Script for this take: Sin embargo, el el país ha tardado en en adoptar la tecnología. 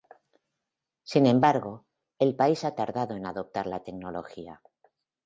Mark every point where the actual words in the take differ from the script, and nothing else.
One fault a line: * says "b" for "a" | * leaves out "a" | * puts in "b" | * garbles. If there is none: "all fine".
* leaves out "el"
* leaves out "en"